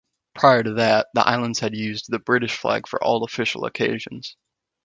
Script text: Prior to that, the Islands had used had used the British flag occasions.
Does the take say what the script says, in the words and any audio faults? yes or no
no